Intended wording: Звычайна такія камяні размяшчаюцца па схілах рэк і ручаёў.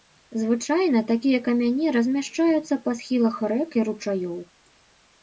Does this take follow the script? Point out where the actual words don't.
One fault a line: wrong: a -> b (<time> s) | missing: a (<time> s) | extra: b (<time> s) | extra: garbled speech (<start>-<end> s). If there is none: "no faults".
no faults